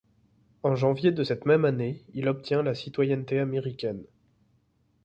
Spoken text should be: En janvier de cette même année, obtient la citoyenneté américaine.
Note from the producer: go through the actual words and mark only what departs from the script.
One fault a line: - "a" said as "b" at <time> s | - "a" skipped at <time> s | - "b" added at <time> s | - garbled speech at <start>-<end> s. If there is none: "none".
- "il" added at 2.1 s